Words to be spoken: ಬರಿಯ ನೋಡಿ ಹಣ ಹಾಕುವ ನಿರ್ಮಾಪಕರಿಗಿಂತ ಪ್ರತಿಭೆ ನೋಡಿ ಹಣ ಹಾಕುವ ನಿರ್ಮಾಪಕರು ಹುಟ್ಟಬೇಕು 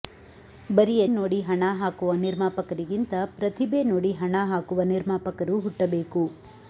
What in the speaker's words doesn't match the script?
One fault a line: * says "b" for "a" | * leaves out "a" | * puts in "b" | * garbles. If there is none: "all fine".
all fine